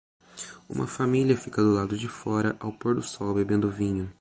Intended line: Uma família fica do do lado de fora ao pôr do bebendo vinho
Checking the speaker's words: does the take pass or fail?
fail